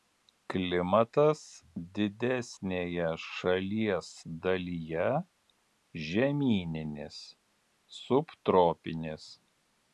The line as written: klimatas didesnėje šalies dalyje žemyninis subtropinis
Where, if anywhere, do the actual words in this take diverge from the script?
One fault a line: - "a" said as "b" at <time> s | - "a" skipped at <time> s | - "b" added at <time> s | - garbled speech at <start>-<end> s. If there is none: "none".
none